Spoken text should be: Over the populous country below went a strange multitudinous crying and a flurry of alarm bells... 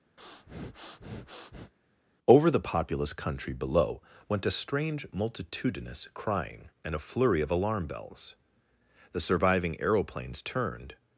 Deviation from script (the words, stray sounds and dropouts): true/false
true